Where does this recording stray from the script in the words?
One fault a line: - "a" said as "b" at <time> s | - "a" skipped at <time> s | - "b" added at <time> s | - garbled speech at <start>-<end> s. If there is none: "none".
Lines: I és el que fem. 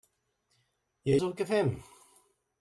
none